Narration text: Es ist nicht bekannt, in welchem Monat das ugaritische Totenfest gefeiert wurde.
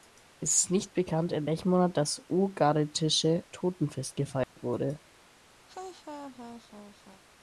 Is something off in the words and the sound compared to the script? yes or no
yes